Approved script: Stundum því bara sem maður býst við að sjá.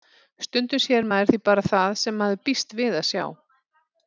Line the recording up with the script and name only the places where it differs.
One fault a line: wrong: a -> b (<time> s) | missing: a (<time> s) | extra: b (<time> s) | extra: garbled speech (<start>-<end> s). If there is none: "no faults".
extra: sér maður (0.8 s)
extra: það (1.7 s)